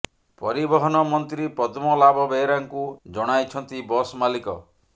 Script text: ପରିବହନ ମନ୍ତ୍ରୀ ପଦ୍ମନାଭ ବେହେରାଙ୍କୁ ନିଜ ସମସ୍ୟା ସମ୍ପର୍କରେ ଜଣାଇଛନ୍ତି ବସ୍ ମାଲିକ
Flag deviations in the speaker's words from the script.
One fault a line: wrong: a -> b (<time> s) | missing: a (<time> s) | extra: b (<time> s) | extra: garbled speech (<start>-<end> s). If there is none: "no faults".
missing: ନିଜ ସମସ୍ୟା ସମ୍ପର୍କରେ (2.9 s)